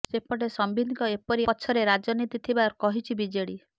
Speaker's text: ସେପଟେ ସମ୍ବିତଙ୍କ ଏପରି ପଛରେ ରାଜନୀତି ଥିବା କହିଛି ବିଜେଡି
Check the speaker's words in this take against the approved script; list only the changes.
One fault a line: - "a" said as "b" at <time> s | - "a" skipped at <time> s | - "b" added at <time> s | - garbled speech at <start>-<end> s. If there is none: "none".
none